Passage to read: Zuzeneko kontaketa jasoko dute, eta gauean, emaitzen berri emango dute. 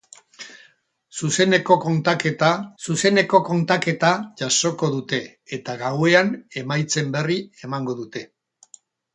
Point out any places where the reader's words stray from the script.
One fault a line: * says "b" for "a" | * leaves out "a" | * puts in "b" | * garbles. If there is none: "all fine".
* puts in "zuzeneko kontaketa"